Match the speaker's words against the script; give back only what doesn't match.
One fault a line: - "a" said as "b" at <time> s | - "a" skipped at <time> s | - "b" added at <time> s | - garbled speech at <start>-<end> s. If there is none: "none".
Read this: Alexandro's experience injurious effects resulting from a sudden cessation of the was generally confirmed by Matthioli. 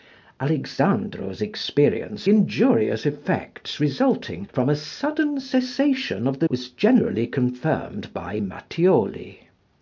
none